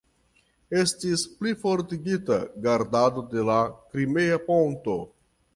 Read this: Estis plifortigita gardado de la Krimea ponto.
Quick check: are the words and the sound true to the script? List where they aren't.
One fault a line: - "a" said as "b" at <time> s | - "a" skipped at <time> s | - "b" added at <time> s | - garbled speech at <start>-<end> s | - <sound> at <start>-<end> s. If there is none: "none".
none